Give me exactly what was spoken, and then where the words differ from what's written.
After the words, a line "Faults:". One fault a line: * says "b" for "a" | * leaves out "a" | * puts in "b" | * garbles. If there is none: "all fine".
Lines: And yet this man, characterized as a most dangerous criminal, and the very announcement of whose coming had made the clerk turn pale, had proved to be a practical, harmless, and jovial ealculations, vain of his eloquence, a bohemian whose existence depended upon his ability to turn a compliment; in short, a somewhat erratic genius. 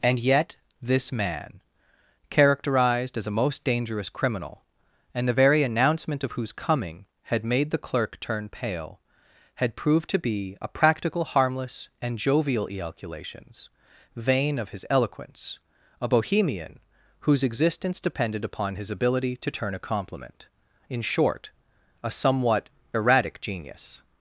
And yet this man, characterized as a most dangerous criminal, and the very announcement of whose coming had made the clerk turn pale, had proved to be a practical, harmless, and jovial ealculations, vain of his eloquence, a bohemian whose existence depended upon his ability to turn a compliment; in short, a somewhat erratic genius.
Faults:
all fine